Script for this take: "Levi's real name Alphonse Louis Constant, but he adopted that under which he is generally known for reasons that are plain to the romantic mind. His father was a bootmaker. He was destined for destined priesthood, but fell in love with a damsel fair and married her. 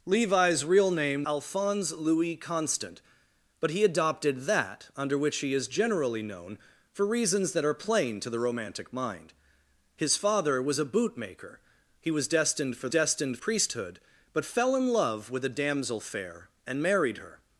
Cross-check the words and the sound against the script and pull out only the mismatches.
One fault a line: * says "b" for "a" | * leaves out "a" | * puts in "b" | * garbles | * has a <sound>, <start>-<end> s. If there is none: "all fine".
all fine